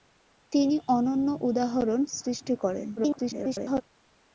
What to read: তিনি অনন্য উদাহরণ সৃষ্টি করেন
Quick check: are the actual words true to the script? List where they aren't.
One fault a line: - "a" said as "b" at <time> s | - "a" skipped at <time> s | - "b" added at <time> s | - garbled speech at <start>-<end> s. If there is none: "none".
- garbled speech at 3.0-3.8 s